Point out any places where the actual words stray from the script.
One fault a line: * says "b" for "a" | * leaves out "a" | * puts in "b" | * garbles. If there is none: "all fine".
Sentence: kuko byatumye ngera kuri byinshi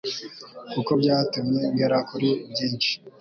all fine